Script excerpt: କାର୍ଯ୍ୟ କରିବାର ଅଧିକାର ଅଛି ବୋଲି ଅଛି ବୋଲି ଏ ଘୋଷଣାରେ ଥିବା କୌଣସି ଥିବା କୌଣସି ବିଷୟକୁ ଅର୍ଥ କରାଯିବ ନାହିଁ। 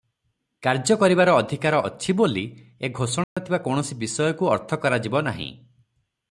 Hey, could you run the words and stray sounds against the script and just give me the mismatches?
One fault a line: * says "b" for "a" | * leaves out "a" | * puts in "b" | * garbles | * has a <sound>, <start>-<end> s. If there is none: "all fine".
* leaves out "ଅଛି ବୋଲି"
* has a dropout, 3.2-3.4 s
* leaves out "ଥିବା କୌଣସି"